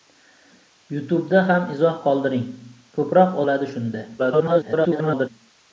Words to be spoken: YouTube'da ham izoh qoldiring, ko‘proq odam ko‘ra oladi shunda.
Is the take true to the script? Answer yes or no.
no